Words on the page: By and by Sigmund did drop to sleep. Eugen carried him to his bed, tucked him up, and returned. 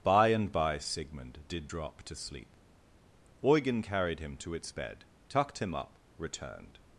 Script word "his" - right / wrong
wrong